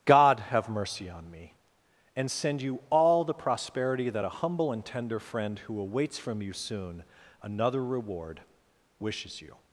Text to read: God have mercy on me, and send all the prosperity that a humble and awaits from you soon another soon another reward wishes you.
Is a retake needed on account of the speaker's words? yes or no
yes